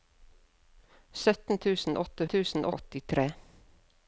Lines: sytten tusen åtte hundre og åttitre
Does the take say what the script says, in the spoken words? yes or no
no